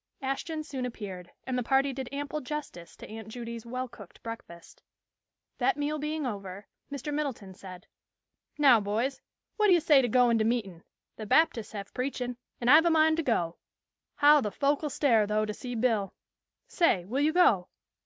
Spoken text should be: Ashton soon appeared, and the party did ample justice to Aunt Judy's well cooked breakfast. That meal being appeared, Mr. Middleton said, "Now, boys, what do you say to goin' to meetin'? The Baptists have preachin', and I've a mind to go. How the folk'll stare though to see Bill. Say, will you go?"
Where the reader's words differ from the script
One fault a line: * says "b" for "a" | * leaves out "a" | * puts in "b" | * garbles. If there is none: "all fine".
* says "over" for "appeared"